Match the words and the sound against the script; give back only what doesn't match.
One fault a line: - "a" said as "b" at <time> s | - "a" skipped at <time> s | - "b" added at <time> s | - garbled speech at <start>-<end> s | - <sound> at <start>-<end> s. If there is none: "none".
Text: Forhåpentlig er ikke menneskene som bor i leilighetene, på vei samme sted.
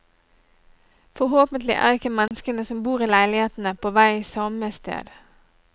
- dropout at 2.3-2.3 s